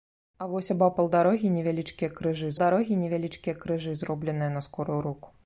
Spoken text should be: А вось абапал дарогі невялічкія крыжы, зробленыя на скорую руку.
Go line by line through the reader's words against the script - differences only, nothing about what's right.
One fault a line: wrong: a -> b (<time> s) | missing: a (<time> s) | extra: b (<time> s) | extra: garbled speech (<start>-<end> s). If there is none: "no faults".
extra: дарогі невялічкія крыжы (2.6 s)